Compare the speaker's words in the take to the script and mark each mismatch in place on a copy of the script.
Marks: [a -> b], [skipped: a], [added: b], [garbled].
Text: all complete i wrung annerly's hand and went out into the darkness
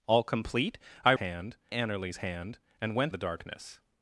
all complete i [wrung -> hand] annerly's hand and went [skipped: out into] the darkness